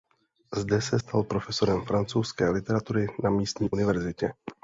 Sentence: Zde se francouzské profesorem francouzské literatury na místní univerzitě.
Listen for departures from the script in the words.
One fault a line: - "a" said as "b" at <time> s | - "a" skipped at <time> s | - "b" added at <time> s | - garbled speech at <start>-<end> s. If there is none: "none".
- "francouzské" said as "stal" at 0.9 s